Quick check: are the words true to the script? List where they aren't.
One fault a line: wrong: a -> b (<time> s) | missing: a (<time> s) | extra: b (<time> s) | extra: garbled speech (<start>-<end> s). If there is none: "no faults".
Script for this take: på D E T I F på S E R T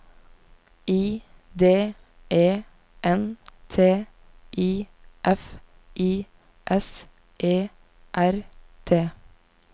wrong: på -> I (0.9 s)
extra: N (3.0 s)
wrong: på -> I (6.0 s)